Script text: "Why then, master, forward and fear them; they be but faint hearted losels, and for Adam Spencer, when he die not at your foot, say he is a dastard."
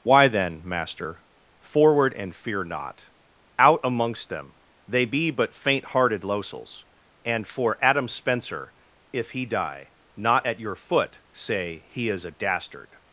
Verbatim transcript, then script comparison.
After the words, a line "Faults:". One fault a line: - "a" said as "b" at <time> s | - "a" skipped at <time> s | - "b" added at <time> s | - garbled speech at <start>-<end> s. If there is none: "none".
"Why then, master, forward and fear not! Out amongst them; they be but faint hearted losels, and for Adam Spencer, if he die not at your foot, say he is a dastard."
Faults:
- "not Out amongst" added at 2.6 s
- "when" said as "if" at 9.1 s